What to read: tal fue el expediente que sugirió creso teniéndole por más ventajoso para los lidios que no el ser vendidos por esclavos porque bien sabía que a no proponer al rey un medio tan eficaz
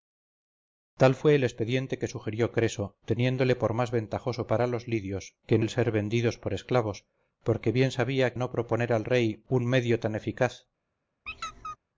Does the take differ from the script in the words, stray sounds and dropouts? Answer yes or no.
yes